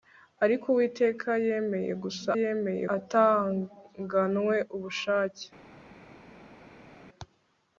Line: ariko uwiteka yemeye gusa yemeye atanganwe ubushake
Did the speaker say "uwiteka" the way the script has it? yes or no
yes